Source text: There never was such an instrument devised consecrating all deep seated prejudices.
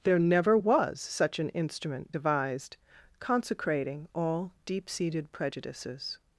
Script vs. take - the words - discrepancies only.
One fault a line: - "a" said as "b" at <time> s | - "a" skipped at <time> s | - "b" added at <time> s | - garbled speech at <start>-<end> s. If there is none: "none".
none